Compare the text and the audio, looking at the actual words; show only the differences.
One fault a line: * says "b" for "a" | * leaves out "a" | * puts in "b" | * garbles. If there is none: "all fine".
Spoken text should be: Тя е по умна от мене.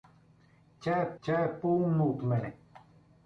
* puts in "тя е"